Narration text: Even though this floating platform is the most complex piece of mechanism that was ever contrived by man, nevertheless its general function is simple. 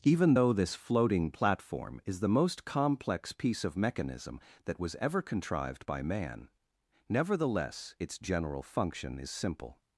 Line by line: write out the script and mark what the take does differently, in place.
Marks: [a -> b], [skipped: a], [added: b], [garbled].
Even though this floating platform is the most complex piece of mechanism that was ever contrived by man, nevertheless its general function is simple.